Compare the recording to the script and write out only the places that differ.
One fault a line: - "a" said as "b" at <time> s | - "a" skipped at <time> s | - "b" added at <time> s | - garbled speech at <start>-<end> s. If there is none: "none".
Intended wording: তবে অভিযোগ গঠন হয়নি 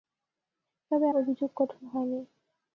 none